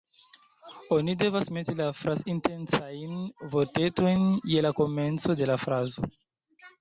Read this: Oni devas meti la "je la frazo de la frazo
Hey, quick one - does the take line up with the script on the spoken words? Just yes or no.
no